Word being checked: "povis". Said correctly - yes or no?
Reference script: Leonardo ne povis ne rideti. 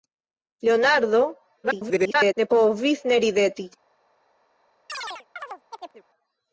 yes